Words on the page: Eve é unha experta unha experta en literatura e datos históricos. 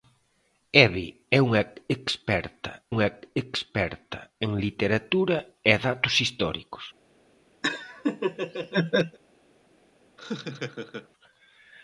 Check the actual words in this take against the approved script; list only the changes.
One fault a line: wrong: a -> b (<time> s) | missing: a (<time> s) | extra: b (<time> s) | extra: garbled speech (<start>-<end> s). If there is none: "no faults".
no faults